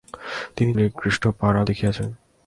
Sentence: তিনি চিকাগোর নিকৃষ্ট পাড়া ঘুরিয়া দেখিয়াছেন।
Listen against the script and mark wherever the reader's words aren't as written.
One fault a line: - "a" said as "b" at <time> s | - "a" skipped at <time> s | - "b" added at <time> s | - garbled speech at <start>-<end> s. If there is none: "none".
- "চিকাগোর" skipped at 0.7 s
- "ঘুরিয়া" skipped at 1.6 s